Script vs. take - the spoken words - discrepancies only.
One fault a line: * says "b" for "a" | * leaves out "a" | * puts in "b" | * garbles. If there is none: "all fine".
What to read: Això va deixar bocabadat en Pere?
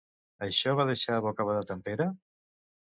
all fine